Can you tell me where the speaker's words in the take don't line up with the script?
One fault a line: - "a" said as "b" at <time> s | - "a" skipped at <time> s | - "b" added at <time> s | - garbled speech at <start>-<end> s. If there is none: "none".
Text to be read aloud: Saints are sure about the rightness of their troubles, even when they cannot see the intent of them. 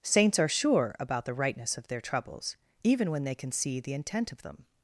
- "cannot" said as "can" at 3.4 s